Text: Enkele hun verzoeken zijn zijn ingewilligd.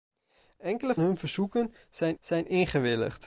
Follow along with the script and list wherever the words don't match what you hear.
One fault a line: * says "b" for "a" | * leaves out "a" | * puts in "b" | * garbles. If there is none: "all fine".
all fine